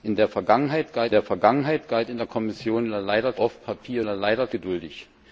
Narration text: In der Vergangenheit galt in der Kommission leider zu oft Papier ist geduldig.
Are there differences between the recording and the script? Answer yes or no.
yes